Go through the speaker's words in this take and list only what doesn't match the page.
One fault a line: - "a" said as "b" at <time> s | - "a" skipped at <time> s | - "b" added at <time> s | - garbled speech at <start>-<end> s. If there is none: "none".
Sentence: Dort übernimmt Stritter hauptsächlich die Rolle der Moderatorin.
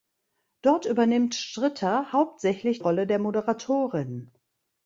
- "die" skipped at 2.8 s